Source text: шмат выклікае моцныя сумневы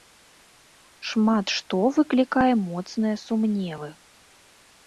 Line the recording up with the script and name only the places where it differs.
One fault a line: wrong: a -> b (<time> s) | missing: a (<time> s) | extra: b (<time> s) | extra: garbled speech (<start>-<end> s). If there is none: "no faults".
extra: што (1.6 s)